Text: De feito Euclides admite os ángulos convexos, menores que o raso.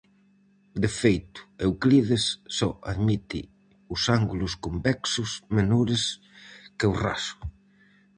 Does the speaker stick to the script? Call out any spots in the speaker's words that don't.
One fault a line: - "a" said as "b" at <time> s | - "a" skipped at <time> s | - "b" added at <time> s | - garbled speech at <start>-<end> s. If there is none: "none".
- "só" added at 2.6 s